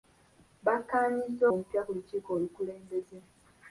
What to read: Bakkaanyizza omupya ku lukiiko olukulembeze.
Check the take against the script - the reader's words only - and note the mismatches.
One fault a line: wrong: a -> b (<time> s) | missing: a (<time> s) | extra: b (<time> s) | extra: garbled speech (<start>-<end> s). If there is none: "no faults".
no faults